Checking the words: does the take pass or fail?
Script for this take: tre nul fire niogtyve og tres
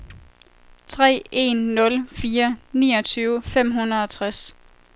fail